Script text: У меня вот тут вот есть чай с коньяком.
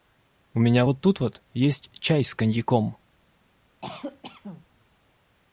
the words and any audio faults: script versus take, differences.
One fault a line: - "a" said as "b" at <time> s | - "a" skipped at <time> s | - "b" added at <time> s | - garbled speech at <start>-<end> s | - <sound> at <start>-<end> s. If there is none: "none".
- cough at 3.8-4.6 s